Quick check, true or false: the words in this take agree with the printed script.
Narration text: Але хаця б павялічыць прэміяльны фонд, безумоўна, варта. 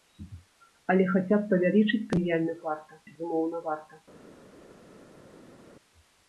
false